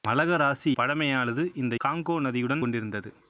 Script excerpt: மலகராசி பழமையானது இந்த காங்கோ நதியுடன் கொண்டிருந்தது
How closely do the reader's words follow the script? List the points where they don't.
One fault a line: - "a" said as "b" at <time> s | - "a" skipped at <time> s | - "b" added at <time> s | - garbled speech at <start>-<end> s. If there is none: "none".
none